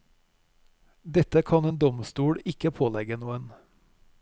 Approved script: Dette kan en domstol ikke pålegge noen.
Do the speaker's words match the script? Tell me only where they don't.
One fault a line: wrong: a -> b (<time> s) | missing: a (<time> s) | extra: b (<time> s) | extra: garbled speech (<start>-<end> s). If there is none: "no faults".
no faults